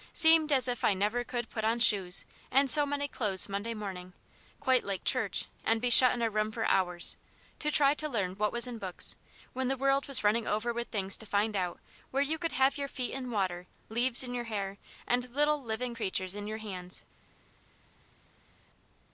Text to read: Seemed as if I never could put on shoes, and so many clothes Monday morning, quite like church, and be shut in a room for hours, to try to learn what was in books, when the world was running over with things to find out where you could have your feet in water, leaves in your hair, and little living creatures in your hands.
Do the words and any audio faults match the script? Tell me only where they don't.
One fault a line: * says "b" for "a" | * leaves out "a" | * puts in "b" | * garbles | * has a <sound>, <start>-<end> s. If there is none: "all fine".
all fine